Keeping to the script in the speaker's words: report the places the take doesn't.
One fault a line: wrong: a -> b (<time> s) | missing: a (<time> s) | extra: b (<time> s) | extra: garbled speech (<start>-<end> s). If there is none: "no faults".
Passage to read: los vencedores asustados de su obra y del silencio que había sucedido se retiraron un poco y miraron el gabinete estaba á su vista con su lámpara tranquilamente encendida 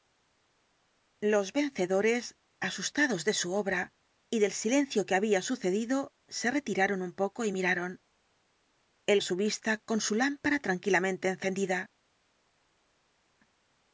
missing: gabinete estaba (9.2 s)